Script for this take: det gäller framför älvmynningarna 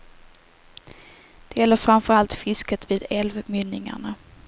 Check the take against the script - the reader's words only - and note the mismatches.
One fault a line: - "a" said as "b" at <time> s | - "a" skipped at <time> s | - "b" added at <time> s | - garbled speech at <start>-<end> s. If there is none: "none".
- "allt fisket vid" added at 2.1 s